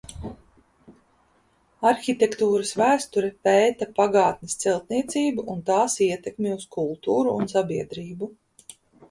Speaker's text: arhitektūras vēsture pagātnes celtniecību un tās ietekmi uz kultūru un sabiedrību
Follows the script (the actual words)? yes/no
no